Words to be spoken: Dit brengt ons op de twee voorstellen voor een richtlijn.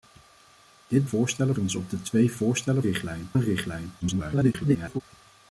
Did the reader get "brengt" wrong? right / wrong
wrong